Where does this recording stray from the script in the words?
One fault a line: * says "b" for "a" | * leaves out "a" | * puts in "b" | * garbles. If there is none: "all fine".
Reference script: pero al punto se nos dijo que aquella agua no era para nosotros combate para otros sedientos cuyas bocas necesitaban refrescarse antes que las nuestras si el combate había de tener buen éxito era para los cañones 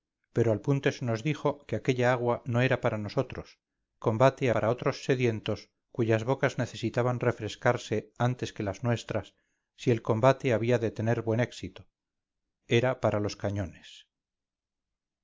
all fine